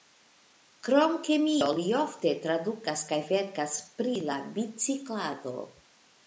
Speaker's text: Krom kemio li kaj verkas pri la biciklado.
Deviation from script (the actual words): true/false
true